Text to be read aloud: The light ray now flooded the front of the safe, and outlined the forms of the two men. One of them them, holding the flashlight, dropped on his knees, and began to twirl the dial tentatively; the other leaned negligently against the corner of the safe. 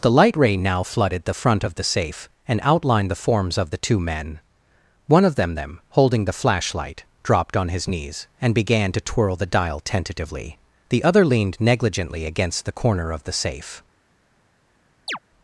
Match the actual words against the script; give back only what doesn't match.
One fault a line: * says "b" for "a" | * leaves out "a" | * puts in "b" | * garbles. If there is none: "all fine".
all fine